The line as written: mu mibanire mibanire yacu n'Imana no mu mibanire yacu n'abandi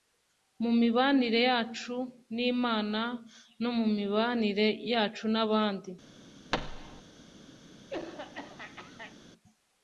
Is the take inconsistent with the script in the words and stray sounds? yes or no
yes